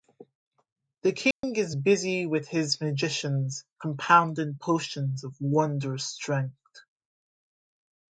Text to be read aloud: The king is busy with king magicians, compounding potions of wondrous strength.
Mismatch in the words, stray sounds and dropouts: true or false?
true